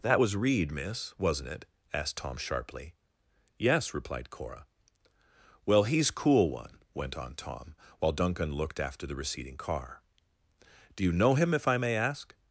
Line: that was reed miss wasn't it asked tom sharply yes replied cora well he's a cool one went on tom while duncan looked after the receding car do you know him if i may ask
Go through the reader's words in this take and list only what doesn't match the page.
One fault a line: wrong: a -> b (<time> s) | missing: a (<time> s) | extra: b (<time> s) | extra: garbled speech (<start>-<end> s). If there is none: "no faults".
missing: a (6.1 s)